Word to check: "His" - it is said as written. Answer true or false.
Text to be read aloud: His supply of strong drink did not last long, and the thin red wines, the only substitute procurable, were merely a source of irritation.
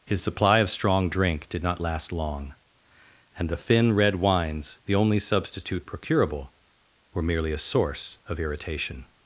true